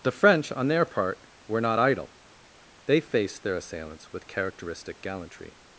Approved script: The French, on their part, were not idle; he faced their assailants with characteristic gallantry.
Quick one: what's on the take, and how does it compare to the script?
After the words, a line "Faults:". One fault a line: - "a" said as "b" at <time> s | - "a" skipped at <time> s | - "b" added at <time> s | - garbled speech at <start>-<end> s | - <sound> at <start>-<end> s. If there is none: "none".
The French, on their part, were not idle; they faced their assailants with characteristic gallantry.
Faults:
- "he" said as "they" at 2.9 s